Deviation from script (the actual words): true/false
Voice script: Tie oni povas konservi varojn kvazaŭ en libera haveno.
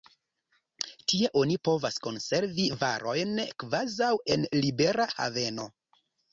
false